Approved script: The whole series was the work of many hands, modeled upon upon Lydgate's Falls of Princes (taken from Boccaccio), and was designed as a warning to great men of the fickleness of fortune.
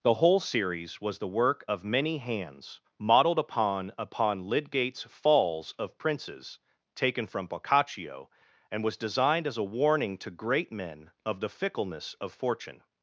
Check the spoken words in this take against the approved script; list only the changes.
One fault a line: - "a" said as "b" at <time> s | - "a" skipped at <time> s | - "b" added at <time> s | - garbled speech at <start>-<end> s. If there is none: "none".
none